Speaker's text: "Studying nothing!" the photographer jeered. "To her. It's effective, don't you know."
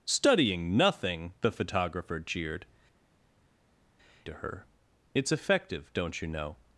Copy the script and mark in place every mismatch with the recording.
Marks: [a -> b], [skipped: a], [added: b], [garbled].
"Studying nothing!" the photographer jeered. "To her. It's effective, don't you know."